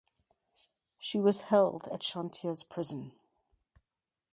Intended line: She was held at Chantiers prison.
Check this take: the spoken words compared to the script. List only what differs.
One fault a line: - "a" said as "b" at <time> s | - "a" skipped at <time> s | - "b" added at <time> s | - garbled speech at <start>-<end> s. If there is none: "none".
none